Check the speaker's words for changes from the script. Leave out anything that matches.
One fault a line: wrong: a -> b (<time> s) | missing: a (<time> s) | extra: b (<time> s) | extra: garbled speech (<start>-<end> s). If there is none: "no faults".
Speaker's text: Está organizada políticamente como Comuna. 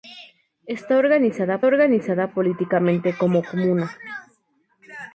extra: organizada (1.7 s)